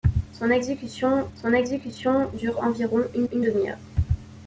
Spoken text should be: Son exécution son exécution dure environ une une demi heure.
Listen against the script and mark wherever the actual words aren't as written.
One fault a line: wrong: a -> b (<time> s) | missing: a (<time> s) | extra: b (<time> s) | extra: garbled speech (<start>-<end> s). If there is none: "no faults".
no faults